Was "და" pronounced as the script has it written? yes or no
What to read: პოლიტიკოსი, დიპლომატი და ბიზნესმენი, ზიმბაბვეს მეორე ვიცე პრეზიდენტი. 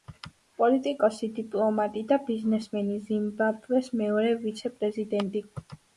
yes